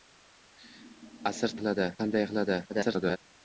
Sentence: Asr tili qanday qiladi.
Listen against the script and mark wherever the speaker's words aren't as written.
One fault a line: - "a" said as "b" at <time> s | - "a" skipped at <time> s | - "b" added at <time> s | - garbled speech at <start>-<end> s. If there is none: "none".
- "tili" said as "qiladi" at 1.6 s
- garbled speech at 2.7-3.2 s